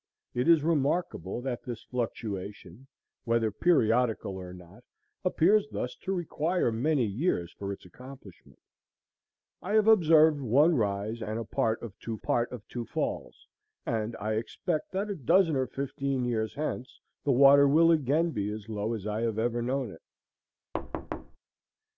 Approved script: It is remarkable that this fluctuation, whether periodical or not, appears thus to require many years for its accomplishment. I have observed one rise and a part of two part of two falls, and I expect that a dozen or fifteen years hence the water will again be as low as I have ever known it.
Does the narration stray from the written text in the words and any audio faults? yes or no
yes